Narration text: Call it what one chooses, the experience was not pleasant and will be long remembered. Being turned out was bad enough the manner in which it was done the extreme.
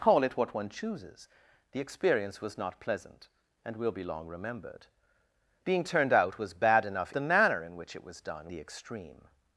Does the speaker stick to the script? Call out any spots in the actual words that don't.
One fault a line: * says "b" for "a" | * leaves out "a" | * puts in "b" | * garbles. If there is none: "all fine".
all fine